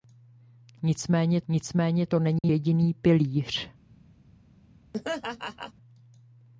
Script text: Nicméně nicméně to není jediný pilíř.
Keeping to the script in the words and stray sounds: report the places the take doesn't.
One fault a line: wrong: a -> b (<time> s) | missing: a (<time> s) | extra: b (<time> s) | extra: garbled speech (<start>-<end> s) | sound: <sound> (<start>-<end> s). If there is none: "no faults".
sound: dropout (2.4-2.4 s)
sound: laugh (4.9-5.7 s)